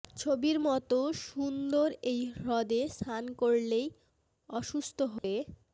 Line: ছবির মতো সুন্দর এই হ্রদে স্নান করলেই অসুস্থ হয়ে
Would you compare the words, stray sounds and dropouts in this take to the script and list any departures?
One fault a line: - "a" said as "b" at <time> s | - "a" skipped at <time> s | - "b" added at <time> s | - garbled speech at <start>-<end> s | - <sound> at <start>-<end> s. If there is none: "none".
- dropout at 5.2-5.2 s